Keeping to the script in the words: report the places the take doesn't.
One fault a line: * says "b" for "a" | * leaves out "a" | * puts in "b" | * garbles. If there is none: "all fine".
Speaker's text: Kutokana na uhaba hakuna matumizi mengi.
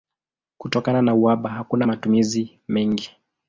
all fine